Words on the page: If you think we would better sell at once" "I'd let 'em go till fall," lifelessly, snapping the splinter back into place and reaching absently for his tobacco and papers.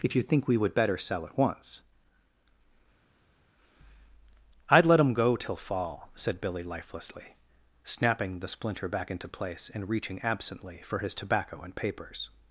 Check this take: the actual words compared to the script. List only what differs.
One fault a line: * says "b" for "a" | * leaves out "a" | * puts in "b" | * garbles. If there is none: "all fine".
* puts in "said Billy"